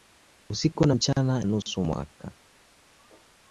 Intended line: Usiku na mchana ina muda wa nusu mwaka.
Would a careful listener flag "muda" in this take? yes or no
yes